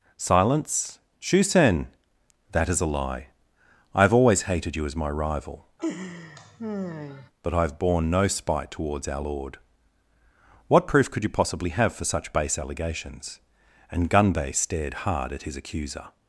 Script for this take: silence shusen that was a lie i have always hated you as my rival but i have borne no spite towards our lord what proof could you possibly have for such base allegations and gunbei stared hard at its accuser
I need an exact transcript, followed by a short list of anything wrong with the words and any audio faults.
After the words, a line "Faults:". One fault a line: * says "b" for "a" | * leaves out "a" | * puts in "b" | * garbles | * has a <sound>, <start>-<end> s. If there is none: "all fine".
silence shusen that is a lie i have always hated you as my rival but i have borne no spite towards our lord what proof could you possibly have for such base allegations and gunbei stared hard at his accuser
Faults:
* says "is" for "was"
* has a laugh, 5.8-7.3 s
* says "his" for "its"